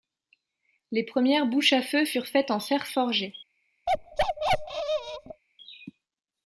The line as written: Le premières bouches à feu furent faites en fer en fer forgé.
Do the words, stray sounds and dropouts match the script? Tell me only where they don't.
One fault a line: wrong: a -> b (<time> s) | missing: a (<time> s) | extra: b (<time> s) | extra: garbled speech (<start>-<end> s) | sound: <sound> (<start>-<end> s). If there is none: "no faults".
wrong: Le -> Les (0.9 s)
missing: en fer (2.9 s)
sound: bark (3.9-5.4 s)